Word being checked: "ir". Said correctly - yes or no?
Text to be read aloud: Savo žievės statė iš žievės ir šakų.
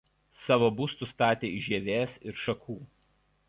yes